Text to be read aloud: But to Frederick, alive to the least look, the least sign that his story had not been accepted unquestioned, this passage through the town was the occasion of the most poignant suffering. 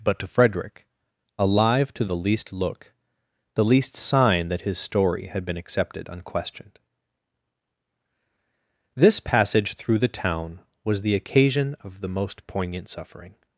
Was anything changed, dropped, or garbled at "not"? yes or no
yes